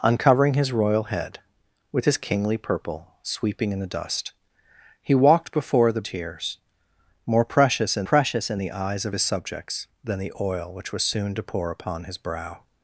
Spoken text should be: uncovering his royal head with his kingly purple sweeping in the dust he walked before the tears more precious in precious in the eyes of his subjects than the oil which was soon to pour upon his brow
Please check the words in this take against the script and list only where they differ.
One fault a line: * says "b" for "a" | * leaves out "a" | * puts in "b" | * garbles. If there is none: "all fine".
all fine